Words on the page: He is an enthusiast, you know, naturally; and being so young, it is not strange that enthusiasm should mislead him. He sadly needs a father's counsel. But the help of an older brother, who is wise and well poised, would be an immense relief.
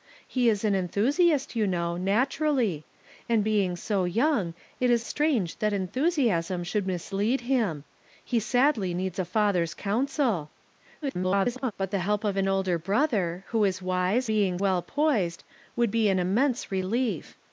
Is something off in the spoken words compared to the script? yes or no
yes